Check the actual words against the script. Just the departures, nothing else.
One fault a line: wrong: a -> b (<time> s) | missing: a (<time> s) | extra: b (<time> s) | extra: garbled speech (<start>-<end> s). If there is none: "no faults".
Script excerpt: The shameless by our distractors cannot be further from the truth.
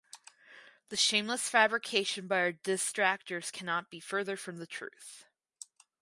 extra: fabrication (1.5 s)